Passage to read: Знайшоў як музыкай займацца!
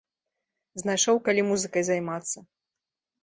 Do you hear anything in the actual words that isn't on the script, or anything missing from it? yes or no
yes